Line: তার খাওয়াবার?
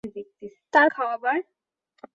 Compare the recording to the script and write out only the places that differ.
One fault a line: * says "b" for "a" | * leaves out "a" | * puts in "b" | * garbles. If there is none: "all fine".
all fine